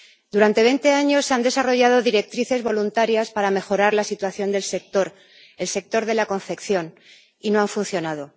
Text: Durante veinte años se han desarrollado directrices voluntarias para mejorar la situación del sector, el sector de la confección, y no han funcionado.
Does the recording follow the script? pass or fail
pass